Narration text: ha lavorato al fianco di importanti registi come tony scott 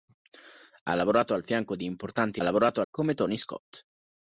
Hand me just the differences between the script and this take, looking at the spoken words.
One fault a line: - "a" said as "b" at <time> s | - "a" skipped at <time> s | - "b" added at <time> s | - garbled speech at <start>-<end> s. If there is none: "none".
- "registi" said as "lavorato" at 2.4 s